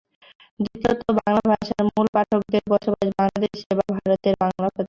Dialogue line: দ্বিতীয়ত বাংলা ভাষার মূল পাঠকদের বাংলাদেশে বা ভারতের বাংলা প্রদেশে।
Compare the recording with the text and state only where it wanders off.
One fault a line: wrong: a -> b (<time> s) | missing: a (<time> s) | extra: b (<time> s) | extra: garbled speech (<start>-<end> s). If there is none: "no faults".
extra: বসবাস (2.7 s)